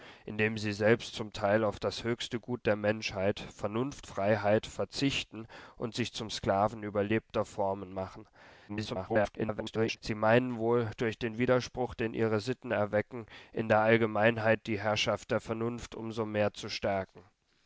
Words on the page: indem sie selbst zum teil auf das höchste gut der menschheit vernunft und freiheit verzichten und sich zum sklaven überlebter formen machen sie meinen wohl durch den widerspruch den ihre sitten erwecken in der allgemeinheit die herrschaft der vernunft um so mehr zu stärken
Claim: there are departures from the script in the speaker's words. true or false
true